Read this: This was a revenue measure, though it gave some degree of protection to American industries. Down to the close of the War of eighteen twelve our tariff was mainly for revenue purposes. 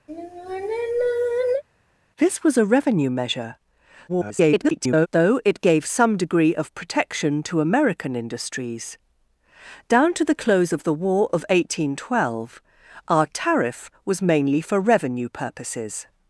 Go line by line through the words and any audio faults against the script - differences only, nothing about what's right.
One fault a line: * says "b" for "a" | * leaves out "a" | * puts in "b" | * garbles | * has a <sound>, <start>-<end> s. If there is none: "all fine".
* has a sigh, 0.1-1.6 s
* garbles